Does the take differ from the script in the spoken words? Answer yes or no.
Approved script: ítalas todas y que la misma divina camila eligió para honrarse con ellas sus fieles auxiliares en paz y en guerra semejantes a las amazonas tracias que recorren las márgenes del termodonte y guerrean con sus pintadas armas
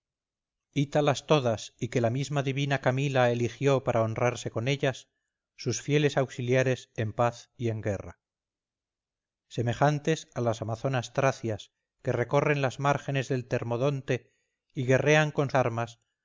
yes